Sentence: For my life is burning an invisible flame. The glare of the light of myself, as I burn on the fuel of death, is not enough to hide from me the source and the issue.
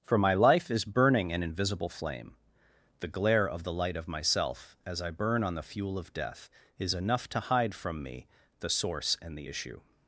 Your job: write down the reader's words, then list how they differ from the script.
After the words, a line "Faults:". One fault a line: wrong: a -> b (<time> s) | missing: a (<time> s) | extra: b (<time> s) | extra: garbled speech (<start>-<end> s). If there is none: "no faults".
For my life is burning an invisible flame. The glare of the light of myself, as I burn on the fuel of death, is enough to hide from me the source and the issue.
Faults:
missing: not (6.9 s)